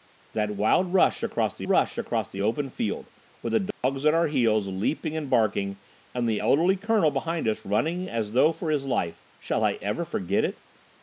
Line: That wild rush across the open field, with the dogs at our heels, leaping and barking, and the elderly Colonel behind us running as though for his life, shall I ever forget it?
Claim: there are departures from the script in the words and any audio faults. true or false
true